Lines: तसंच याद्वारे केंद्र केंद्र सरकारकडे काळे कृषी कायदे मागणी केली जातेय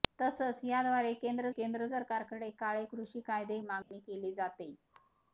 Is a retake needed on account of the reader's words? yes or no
no